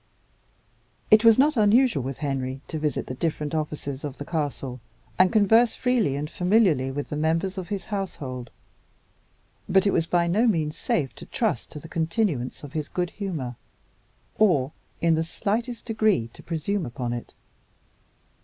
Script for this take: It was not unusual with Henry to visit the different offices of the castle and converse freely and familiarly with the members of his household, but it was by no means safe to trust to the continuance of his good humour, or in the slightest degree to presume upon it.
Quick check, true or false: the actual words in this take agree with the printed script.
true